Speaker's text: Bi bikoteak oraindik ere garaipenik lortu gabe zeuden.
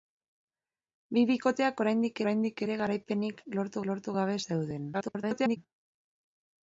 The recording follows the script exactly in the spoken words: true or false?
false